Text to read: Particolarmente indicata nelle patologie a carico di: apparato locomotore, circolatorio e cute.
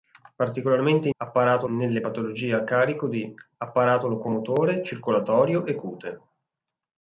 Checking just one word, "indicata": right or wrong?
wrong